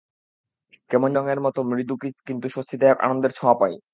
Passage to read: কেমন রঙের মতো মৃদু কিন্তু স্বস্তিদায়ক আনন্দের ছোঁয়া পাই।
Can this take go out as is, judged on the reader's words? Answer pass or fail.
pass